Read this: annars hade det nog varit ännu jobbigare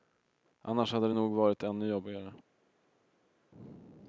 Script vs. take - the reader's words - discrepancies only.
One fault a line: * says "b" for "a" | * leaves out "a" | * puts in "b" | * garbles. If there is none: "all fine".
all fine